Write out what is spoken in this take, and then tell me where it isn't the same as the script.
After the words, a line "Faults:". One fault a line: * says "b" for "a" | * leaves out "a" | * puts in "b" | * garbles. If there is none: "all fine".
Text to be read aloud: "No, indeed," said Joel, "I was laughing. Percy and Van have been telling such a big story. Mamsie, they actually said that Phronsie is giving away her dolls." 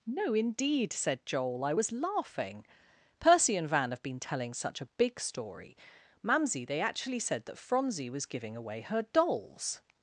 "No, indeed," said Joel, "I was laughing. Percy and Van have been telling such a big story. Mamsie, they actually said that Phronsie was giving away her dolls."
Faults:
* says "was" for "is"